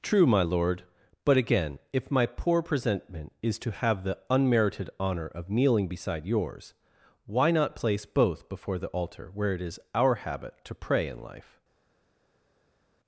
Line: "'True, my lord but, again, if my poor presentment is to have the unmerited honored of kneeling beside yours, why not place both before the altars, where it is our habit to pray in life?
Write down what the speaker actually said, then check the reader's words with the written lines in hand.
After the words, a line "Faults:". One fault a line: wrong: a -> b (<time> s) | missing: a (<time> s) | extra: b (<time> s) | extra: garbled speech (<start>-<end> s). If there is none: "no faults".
"'True, my lord but, again, if my poor presentment is to have the unmerited honor of kneeling beside yours, why not place both before the altar, where it is our habit to pray in life?
Faults:
wrong: honored -> honor (5.0 s)
wrong: altars -> altar (8.9 s)